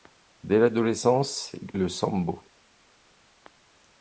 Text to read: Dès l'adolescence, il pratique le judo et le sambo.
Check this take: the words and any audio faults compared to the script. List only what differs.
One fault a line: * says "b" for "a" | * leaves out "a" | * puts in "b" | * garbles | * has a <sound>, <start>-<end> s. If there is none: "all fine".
* leaves out "pratique le judo"